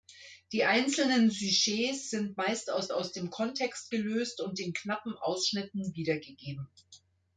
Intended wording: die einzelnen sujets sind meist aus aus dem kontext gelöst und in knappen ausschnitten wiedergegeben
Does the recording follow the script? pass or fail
pass